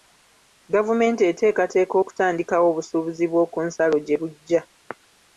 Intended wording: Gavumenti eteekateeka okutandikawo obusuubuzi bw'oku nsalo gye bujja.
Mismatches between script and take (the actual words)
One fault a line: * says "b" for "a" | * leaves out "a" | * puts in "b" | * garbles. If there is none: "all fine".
all fine